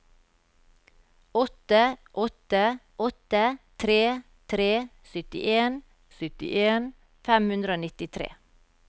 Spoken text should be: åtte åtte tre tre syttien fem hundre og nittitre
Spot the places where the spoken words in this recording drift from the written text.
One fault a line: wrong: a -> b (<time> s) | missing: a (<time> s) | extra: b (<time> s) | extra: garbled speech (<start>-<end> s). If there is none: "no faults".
extra: åtte (3.1 s)
extra: syttien (6.2 s)